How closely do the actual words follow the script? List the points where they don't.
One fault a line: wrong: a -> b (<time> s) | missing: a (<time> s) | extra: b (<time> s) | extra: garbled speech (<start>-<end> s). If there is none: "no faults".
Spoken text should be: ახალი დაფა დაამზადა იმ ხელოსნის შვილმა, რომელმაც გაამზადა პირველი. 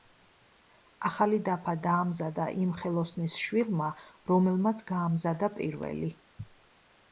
no faults